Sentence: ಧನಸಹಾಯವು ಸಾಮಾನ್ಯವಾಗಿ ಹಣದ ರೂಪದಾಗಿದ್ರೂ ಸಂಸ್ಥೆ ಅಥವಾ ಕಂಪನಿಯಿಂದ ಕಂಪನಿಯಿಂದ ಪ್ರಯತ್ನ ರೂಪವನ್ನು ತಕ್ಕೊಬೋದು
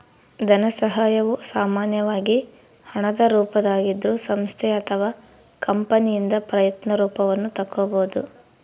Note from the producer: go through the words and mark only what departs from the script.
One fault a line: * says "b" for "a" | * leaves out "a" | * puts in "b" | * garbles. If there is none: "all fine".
* leaves out "ಕಂಪನಿಯಿಂದ"